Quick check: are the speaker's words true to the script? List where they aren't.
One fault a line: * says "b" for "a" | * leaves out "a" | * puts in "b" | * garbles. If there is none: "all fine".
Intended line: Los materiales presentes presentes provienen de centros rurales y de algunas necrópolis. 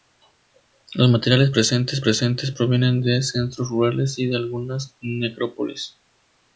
all fine